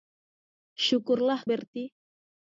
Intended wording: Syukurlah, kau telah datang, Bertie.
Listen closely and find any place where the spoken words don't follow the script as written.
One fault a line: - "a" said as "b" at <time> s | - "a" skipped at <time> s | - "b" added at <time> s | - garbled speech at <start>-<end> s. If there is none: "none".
- "kau telah datang" skipped at 1.4 s